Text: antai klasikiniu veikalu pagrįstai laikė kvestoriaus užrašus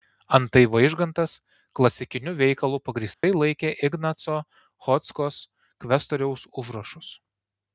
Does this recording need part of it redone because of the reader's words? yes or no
yes